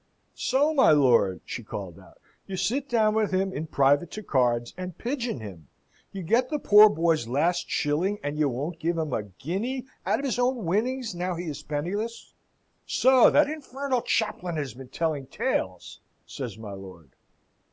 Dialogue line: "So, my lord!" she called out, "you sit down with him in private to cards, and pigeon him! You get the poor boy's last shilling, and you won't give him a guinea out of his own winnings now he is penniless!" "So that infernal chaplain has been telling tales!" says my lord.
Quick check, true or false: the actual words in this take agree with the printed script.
true